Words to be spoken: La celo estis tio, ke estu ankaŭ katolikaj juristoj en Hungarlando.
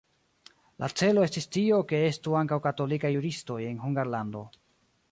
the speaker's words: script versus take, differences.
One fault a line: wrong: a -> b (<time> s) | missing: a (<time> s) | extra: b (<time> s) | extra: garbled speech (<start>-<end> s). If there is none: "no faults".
no faults